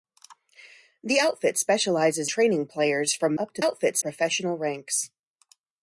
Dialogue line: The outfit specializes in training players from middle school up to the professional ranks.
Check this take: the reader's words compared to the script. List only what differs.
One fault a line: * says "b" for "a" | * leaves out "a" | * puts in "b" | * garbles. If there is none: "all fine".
* leaves out "in"
* leaves out "middle school"
* says "outfit" for "the"